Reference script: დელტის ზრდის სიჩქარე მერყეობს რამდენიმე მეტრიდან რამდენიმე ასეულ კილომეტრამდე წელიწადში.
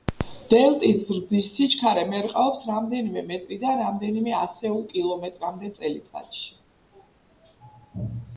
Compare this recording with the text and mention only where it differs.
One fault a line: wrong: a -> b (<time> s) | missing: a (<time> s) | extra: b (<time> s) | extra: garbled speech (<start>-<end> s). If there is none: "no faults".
no faults